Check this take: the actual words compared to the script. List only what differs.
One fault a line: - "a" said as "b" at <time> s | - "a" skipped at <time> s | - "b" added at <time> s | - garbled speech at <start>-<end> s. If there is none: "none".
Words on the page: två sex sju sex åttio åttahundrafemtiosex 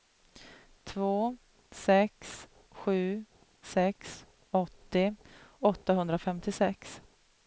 none